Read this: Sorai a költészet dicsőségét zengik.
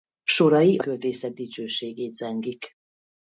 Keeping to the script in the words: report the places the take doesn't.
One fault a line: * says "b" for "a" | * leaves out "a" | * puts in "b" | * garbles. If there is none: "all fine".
all fine